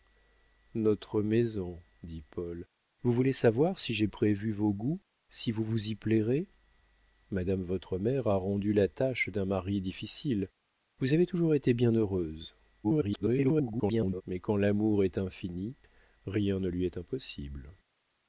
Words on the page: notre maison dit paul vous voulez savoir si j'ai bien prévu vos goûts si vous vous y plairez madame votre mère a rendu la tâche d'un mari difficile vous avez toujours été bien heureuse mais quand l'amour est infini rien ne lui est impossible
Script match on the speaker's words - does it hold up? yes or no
no